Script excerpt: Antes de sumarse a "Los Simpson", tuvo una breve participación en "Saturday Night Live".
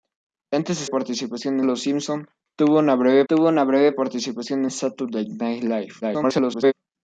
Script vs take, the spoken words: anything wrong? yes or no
yes